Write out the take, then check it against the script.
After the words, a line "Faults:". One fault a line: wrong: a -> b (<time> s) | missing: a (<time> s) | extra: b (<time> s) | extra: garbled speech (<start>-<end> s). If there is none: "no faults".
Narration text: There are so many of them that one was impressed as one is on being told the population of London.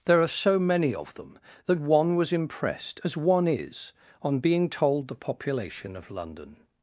There are so many of them that one was impressed as one is on being told the population of London.
Faults:
no faults